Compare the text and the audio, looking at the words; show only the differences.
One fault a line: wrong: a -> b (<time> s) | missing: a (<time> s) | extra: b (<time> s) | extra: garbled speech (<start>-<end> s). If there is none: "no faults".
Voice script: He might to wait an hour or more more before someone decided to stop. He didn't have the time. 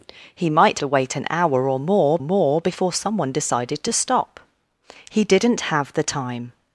no faults